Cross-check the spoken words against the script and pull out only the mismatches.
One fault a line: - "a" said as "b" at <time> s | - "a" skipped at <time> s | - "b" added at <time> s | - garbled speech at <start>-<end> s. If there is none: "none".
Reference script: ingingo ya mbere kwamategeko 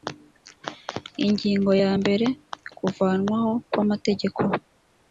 - "kuvanwaho" added at 2.8 s